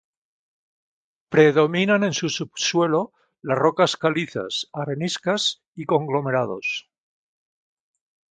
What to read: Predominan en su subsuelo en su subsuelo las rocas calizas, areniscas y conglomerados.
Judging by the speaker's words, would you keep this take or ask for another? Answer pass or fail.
fail